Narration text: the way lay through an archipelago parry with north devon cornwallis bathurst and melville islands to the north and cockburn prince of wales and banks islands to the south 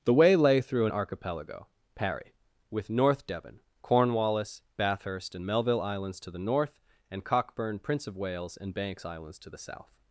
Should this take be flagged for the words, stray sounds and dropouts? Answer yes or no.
no